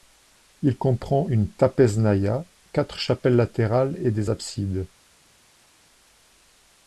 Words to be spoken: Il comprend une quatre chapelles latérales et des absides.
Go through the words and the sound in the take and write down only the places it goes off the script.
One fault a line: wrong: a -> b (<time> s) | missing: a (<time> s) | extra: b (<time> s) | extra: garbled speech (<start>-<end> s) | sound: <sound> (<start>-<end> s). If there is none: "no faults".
extra: trapeznaïa (1.5 s)